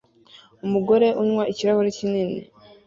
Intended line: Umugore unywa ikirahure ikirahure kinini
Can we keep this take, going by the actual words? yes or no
no